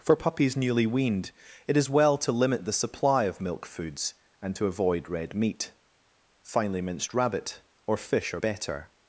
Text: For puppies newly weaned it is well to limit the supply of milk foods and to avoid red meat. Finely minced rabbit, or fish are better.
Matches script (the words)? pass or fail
pass